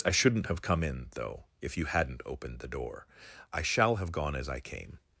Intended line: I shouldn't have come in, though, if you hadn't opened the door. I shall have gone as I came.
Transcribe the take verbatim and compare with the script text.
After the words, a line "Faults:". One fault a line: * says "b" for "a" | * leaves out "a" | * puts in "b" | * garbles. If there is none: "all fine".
I shouldn't have come in, though, if you hadn't opened the door. I shall have gone as I came.
Faults:
all fine